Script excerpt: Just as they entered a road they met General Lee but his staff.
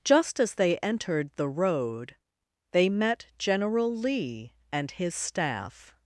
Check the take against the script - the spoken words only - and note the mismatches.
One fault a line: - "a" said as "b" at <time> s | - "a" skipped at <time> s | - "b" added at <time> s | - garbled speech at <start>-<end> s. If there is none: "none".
- "a" said as "the" at 1.4 s
- "but" said as "and" at 4.7 s